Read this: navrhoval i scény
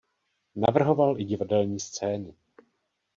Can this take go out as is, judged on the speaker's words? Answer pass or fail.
fail